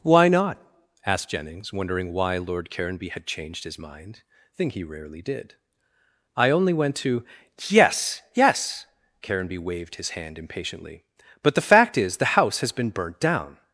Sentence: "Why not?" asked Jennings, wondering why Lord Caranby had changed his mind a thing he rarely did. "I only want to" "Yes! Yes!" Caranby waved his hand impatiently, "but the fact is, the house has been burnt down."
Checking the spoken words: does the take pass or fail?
fail